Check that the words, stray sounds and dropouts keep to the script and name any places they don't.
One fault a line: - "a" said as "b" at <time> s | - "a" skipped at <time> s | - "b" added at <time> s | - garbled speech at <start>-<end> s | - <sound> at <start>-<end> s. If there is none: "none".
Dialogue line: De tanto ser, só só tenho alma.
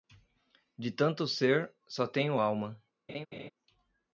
- "só" skipped at 2.1 s
- laugh at 3.1-3.5 s